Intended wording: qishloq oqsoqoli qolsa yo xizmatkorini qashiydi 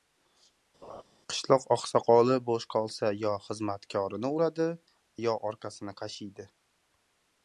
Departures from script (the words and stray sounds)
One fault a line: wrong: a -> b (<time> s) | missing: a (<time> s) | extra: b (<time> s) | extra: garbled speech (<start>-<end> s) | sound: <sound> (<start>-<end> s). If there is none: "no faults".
sound: laugh (0.8-1.0 s)
extra: bo‘sh (2.5 s)
extra: uradi yo orqasini (4.4 s)